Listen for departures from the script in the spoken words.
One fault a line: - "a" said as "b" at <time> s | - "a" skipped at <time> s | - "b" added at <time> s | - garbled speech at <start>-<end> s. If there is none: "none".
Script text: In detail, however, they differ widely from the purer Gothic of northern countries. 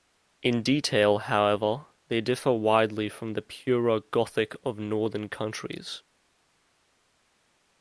none